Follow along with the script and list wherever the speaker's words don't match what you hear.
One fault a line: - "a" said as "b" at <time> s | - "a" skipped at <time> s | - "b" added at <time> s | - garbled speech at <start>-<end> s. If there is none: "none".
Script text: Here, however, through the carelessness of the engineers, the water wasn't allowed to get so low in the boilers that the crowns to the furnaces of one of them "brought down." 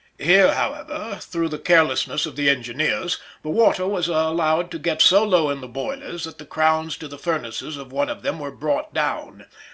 - "wasn't" said as "was" at 3.8 s
- "were" added at 8.4 s